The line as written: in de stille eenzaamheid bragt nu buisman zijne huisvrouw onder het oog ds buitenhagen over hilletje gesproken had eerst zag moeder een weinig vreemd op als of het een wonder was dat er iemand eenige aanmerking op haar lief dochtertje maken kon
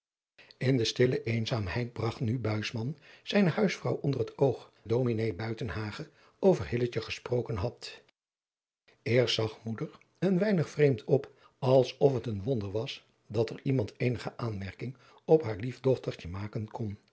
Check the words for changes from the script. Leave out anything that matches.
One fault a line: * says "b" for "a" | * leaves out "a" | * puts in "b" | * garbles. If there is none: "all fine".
all fine